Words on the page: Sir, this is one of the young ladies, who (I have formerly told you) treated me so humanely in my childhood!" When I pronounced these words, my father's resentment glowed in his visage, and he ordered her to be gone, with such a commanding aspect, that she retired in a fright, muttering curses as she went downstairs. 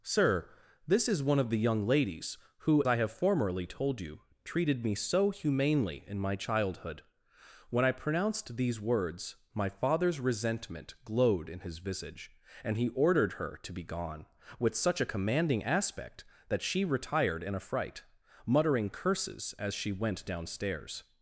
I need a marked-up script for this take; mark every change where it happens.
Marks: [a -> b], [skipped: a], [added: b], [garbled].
Sir, this is one of the young ladies, who (I have formerly told you) treated me so humanely in my childhood!" When I pronounced these words, my father's resentment glowed in his visage, and he ordered her to be gone, with such a commanding aspect, that she retired in a fright, muttering curses as she went downstairs.